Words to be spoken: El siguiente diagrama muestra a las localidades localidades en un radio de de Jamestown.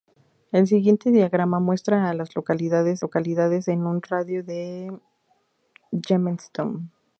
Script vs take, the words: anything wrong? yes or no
no